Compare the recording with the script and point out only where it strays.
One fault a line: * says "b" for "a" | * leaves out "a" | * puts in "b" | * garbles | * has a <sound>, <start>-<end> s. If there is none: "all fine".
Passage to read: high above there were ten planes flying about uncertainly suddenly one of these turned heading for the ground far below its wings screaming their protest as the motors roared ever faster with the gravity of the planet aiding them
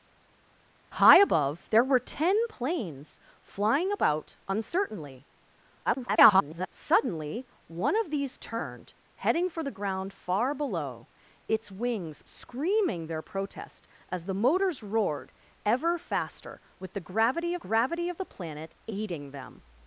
* garbles
* puts in "gravity"